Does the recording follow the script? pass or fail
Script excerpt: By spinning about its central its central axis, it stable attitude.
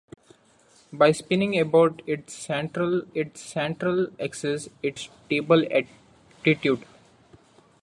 pass